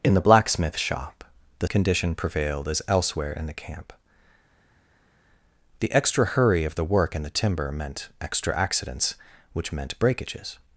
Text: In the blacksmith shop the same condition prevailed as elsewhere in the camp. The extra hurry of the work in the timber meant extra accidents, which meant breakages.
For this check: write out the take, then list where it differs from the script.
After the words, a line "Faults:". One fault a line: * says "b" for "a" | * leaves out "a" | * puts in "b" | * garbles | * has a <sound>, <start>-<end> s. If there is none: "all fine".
In the blacksmith shop the condition prevailed as elsewhere in the camp. The extra hurry of the work in the timber meant extra accidents, which meant breakages.
Faults:
* leaves out "same"